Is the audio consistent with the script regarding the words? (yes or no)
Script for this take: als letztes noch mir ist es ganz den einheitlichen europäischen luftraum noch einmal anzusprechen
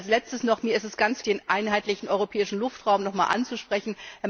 yes